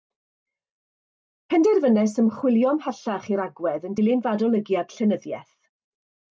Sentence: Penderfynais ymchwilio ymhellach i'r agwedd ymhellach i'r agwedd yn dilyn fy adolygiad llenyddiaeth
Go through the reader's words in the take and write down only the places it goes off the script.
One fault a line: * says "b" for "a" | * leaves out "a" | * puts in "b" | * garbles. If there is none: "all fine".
* leaves out "ymhellach i'r agwedd"